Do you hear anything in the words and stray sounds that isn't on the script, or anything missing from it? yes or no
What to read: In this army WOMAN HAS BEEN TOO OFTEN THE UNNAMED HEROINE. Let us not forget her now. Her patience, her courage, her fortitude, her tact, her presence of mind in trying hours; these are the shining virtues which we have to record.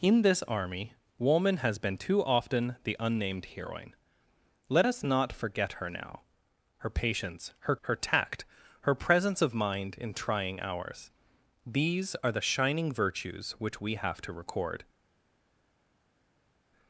yes